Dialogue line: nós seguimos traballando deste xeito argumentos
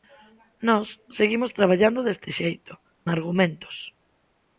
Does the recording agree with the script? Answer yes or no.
yes